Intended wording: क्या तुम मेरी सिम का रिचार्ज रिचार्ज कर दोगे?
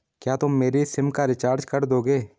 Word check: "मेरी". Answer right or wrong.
right